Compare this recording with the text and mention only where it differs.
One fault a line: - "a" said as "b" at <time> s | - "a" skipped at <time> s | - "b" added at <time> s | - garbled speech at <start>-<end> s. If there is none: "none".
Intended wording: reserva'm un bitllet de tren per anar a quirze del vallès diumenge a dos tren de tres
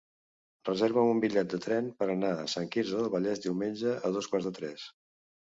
- "sant" added at 2.5 s
- "tren" said as "quarts" at 4.3 s